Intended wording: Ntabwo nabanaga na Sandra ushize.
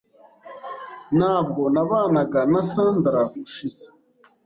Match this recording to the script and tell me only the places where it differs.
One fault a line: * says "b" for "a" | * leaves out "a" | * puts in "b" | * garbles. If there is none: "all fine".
all fine